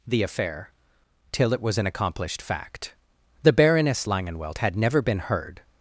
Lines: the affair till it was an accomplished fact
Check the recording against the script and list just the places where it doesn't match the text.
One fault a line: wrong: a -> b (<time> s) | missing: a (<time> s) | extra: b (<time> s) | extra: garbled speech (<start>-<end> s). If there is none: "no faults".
extra: the baroness langenwelt had never been heard (3.4 s)